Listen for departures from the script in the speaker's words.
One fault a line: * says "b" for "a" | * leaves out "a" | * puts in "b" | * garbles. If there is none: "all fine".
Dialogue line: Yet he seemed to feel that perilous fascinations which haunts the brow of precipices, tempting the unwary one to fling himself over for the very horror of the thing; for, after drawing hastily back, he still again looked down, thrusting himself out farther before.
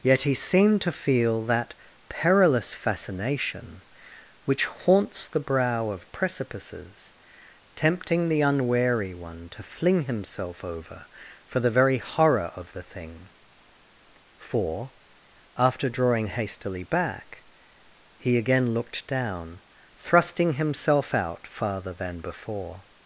* says "fascination" for "fascinations"
* leaves out "still"
* puts in "than"